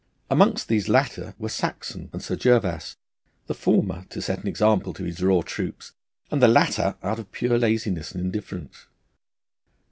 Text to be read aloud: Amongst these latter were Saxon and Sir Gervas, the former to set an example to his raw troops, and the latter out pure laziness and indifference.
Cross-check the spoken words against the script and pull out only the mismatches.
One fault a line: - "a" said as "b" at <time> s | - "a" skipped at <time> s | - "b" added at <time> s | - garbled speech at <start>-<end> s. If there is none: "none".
- "of" added at 7.2 s